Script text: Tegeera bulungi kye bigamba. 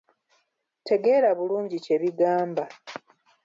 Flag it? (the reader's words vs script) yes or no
no